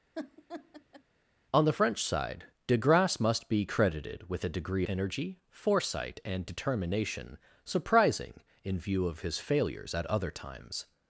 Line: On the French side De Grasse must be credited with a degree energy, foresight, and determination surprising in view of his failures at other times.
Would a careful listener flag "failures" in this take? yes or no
no